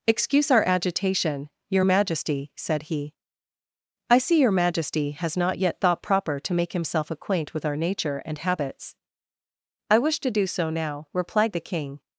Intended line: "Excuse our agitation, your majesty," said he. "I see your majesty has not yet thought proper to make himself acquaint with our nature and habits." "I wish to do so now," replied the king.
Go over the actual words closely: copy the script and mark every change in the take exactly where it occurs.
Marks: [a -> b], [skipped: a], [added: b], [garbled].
"Excuse our agitation, your majesty," said he. "I see your majesty has not yet thought proper to make himself acquaint with our nature and habits." "I wish to do so now," replied the king.